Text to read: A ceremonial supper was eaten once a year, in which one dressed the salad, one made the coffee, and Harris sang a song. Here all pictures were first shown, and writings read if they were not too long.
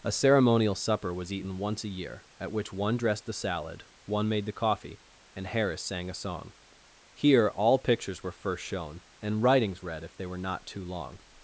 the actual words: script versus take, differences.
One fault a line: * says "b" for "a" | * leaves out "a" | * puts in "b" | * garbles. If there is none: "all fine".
* says "at" for "in"